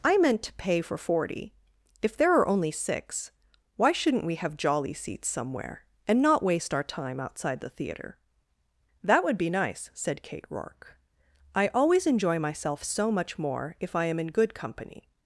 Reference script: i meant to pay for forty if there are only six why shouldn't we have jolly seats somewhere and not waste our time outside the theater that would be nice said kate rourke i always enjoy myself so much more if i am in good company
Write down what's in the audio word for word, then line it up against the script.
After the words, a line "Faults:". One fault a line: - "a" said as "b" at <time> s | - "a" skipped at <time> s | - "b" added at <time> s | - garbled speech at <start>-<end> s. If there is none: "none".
i meant to pay for forty if there are only six why shouldn't we have jolly seats somewhere and not waste our time outside the theater that would be nice said kate rourke i always enjoy myself so much more if i am in good company
Faults:
none